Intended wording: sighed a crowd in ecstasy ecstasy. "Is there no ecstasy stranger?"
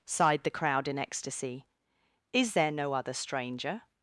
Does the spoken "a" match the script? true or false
false